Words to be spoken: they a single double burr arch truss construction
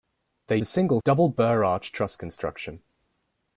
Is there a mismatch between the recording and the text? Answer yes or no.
no